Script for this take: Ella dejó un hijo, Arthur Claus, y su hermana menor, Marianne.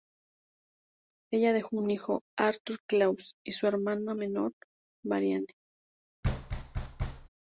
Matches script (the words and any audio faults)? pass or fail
fail